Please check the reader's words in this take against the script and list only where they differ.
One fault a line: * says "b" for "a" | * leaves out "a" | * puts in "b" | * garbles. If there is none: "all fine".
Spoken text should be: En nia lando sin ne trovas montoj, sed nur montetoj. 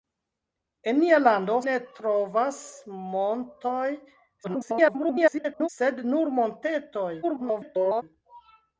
* leaves out "sin"
* garbles
* garbles